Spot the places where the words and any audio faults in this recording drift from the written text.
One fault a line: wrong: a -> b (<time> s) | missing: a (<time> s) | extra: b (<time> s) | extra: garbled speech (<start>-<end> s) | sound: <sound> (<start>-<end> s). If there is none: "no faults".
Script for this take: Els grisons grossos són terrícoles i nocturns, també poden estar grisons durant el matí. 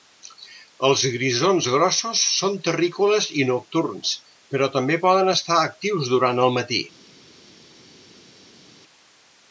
extra: però (4.5 s)
wrong: grisons -> actius (5.7 s)